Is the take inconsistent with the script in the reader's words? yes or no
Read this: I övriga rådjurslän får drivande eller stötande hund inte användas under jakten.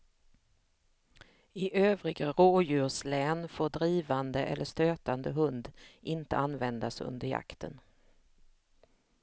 no